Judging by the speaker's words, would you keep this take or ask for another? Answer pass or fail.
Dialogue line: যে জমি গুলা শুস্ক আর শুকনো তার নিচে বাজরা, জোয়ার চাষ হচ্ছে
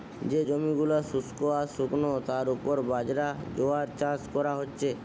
fail